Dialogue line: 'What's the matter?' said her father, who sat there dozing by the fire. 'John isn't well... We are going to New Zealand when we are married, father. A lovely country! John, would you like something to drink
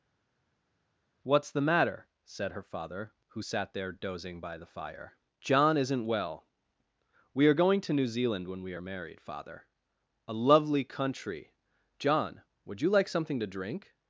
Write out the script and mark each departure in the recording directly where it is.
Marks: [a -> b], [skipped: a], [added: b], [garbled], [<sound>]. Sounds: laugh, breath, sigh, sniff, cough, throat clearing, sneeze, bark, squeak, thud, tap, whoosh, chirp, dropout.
'What's the matter?' said her father, who sat there dozing by the fire. 'John isn't well... We are going to New Zealand when we are married, father. A lovely country! John, would you like something to drink